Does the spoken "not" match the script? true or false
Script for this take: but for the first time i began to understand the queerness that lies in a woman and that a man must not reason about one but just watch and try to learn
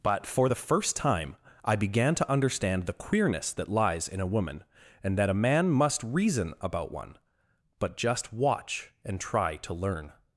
false